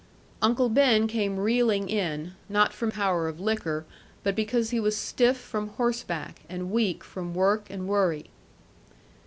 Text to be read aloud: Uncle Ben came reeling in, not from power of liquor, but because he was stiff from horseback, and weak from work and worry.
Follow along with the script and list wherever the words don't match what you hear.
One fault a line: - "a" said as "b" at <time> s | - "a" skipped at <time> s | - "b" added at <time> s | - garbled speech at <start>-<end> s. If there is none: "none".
none